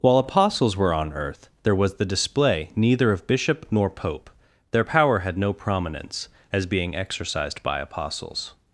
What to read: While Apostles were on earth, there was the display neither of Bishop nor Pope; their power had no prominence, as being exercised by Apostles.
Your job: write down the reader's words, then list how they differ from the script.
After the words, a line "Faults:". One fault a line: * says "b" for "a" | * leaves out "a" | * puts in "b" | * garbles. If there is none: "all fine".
While Apostles were on earth, there was the display neither of Bishop nor Pope; their power had no prominence, as being exercised by Apostles.
Faults:
all fine